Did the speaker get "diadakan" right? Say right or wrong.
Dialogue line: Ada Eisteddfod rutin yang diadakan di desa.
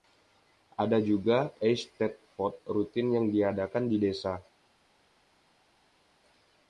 right